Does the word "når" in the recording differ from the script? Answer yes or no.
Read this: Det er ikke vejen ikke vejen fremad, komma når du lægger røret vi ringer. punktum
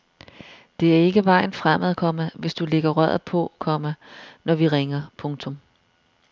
yes